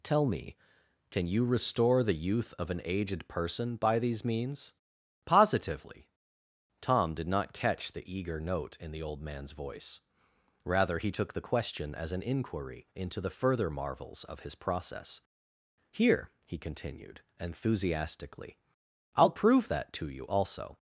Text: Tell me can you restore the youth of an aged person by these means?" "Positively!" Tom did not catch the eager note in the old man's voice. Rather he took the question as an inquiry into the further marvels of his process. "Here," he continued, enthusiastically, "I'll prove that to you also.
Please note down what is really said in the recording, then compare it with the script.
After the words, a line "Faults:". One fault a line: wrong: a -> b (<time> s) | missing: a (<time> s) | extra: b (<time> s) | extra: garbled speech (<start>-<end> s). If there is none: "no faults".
Tell me can you restore the youth of an aged person by these means?" "Positively!" Tom did not catch the eager note in the old man's voice. Rather he took the question as an inquiry into the further marvels of his process. "Here," he continued, enthusiastically, "I'll prove that to you also.
Faults:
no faults